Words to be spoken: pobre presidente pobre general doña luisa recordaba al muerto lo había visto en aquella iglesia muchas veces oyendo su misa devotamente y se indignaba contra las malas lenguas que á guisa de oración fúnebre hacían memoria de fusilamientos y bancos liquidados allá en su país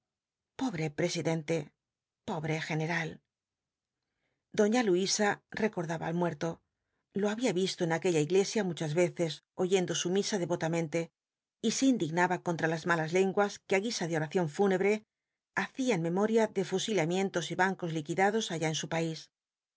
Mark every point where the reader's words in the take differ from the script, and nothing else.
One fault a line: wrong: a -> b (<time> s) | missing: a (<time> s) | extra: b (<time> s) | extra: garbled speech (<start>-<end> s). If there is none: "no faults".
no faults